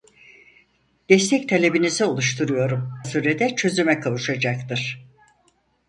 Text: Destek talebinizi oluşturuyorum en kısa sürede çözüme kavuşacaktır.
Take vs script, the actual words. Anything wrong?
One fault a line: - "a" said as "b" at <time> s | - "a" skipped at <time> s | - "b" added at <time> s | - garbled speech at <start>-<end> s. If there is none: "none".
- "en kısa" skipped at 2.9 s